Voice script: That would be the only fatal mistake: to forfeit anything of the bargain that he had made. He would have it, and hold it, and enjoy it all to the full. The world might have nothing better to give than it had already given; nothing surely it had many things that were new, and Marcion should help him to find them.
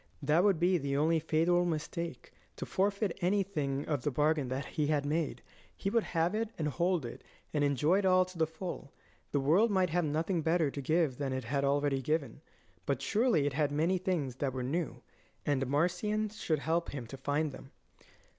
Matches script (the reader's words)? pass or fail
fail